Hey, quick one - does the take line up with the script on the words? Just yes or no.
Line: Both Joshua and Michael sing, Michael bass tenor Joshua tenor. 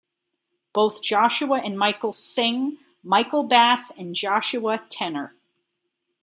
no